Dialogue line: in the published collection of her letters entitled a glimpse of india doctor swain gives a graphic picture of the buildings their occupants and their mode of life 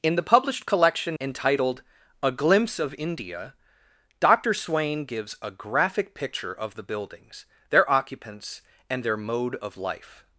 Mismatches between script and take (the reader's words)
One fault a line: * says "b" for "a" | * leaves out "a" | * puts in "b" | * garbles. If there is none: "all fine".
* leaves out "of her letters"